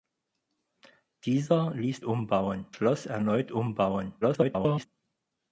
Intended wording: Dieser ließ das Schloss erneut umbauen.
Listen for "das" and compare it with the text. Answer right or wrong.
wrong